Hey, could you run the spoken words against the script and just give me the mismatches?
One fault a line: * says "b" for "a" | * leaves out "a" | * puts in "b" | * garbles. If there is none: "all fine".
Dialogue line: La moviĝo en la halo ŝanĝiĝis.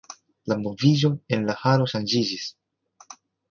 all fine